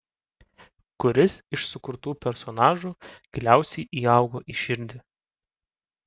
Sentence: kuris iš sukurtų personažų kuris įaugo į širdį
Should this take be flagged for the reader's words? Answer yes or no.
yes